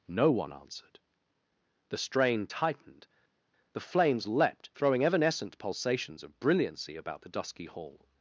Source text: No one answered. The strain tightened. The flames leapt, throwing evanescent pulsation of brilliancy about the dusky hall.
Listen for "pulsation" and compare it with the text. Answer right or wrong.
wrong